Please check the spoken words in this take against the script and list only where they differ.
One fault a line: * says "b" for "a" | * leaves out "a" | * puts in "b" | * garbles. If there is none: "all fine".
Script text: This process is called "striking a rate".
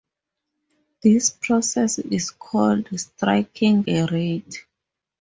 all fine